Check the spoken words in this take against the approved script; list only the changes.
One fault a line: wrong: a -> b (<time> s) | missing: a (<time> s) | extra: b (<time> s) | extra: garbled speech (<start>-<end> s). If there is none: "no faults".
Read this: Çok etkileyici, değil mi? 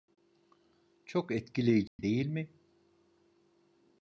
no faults